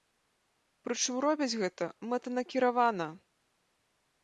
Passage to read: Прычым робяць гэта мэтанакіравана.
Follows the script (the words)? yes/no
yes